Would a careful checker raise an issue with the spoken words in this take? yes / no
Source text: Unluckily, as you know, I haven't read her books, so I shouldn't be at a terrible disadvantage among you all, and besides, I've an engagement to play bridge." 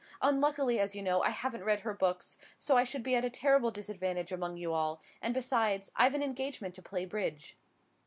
yes